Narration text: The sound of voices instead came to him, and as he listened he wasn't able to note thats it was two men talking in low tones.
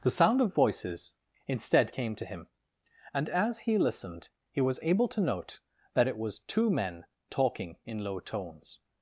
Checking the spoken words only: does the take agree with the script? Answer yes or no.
no